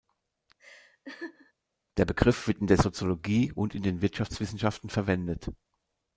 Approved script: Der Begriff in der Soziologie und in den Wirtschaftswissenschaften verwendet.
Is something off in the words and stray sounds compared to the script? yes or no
yes